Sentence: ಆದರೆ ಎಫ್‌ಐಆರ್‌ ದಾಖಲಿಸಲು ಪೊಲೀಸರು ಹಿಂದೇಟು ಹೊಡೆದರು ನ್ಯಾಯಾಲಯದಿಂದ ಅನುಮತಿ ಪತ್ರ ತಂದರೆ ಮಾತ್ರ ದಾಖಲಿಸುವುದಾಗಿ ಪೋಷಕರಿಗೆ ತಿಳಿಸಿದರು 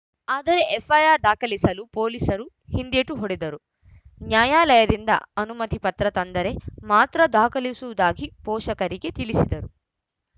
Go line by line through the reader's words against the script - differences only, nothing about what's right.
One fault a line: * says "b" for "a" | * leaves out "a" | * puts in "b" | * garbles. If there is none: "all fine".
all fine